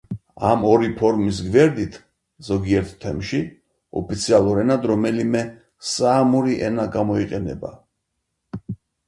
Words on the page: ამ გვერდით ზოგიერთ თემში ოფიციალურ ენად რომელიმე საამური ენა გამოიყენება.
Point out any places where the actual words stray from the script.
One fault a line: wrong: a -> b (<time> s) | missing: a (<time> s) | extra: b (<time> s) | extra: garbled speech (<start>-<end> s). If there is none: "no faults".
extra: ორი ფორმის (0.7 s)